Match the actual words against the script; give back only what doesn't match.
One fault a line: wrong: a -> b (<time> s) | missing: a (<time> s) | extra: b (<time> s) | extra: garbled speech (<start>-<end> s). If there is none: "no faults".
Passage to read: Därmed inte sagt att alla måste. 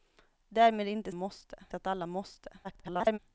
wrong: sagt -> måste (1.1 s)
extra: garbled speech (2.6-3.2 s)